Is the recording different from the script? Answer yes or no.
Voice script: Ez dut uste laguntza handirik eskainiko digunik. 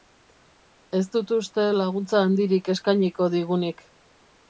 no